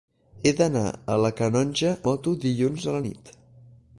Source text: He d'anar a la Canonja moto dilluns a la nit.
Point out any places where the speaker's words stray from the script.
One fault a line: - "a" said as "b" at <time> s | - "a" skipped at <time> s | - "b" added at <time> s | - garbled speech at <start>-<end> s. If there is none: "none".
none